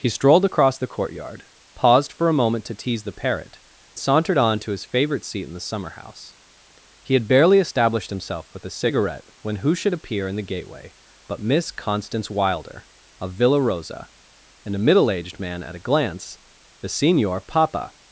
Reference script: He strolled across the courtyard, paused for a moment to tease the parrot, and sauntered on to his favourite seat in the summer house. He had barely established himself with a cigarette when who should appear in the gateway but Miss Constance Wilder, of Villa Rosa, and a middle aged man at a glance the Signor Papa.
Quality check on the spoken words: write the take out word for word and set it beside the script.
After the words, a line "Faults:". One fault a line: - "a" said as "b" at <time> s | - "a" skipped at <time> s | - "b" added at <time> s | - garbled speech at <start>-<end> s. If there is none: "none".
He strolled across the courtyard, paused for a moment to tease the parrot, sauntered on to his favourite seat in the summer house. He had barely established himself with a cigarette when who should appear in the gateway but Miss Constance Wilder, of Villa Rosa, and a middle aged man at a glance the Signor Papa.
Faults:
- "and" skipped at 3.6 s